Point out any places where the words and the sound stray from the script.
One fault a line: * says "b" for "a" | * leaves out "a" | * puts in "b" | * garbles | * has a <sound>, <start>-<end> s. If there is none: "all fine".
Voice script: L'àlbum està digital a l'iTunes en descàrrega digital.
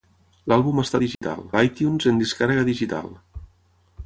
* has a dropout, 1.1-1.2 s